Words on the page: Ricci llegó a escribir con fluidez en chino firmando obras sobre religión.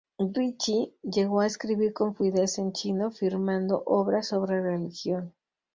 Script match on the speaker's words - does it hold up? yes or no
yes